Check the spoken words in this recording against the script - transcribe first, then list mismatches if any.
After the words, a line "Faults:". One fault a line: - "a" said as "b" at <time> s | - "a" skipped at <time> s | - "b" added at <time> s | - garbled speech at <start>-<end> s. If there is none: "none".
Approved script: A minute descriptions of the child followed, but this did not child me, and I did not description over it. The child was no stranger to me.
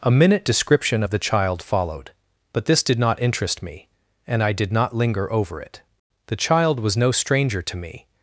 A minute description of the child followed, but this did not interest me, and I did not linger over it. The child was no stranger to me.
Faults:
- "descriptions" said as "description" at 0.5 s
- "child" said as "interest" at 3.2 s
- "description" said as "linger" at 4.9 s